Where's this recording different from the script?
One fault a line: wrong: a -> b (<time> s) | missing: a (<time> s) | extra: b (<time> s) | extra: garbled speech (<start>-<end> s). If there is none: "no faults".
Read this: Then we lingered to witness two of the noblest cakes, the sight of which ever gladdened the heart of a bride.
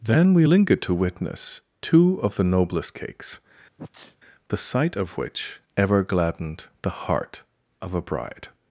no faults